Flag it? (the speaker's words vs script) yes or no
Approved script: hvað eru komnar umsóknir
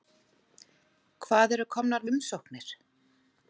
no